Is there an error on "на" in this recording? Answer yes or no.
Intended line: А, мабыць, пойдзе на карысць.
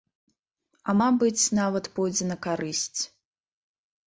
no